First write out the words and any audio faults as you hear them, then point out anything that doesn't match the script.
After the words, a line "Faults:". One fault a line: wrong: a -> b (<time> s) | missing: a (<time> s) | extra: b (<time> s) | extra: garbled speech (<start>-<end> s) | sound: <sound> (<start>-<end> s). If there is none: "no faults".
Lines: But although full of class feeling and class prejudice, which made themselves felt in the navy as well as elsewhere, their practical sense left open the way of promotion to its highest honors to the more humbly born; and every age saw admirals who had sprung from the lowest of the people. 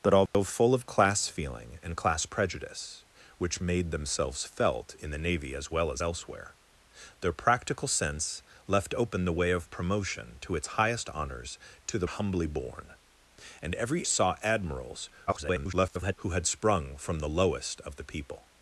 But although full of class feeling and class prejudice, which made themselves felt in the navy as well as elsewhere, their practical sense left open the way of promotion to its highest honors to the humbly born; and every saw admirals [garbled] who had sprung from the lowest of the people.
Faults:
sound: dropout (0.3-0.3 s)
missing: more (12.1 s)
missing: age (14.1 s)
extra: garbled speech (15.3-16.1 s)